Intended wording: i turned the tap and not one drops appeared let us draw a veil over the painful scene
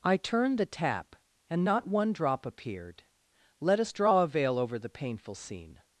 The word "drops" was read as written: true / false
false